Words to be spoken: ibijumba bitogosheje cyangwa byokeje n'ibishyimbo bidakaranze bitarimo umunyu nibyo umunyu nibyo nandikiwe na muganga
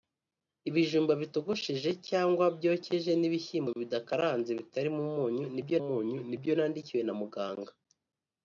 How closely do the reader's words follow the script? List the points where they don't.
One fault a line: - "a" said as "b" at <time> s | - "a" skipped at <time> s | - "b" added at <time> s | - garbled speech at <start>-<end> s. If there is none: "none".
none